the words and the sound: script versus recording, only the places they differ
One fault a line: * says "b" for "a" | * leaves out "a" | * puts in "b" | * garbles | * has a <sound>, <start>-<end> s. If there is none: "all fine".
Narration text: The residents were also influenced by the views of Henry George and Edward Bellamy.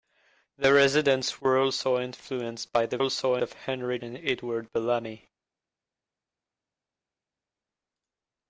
* says "also" for "views"
* leaves out "George"